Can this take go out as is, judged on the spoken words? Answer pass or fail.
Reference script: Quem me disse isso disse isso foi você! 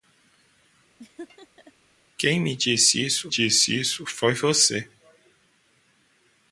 pass